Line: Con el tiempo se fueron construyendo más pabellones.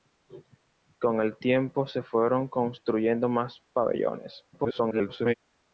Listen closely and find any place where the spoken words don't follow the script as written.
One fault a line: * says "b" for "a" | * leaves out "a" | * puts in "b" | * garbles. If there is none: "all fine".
* garbles